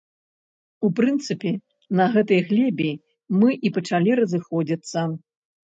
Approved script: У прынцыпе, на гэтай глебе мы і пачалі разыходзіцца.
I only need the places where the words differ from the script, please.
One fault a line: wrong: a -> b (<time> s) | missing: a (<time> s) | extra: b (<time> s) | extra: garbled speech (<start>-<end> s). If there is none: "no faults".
no faults